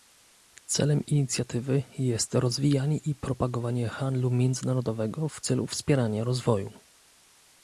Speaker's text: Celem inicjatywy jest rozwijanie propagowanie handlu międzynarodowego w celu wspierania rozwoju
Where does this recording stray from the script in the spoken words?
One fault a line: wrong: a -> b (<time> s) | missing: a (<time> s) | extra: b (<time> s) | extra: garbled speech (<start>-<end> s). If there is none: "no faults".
extra: i (3.0 s)